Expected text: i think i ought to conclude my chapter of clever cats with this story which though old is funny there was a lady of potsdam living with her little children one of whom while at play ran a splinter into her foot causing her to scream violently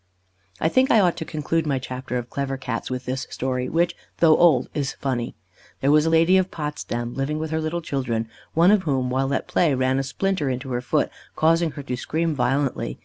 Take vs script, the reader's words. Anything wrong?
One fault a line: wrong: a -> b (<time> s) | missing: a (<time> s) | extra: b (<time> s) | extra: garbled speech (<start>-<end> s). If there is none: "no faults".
no faults